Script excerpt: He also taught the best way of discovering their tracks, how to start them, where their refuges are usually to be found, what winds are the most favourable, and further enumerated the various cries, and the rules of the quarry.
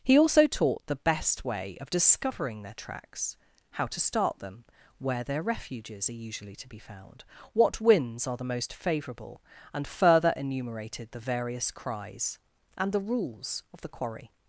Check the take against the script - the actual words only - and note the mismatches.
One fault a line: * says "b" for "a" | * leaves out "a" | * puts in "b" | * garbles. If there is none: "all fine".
all fine